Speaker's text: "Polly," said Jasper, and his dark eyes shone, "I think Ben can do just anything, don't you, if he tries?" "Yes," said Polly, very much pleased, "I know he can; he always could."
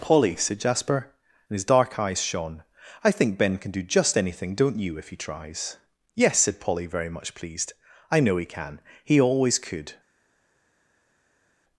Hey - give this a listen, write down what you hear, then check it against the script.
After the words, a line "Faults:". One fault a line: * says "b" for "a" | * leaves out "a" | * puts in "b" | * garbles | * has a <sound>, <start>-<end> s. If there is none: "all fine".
"Polly," said Jasper, and his dark eyes shone, "I think Ben can do just anything, don't you, if he tries?" "Yes," said Polly, very much pleased, "I know he can; he always could."
Faults:
all fine